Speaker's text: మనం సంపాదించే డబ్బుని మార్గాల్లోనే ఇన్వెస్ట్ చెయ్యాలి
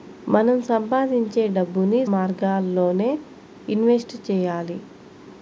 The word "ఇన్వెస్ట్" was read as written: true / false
true